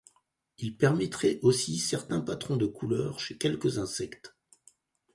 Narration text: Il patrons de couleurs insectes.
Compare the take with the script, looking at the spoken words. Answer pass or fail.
fail